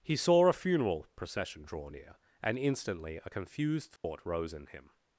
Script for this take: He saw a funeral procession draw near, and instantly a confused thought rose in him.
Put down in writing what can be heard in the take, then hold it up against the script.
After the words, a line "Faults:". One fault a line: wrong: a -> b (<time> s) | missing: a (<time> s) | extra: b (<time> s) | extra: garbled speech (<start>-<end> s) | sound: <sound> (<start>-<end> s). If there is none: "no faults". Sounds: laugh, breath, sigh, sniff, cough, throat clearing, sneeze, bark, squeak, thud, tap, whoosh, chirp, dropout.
He saw a funeral procession draw near, and instantly a confused thought rose in him.
Faults:
sound: dropout (4.0-4.0 s)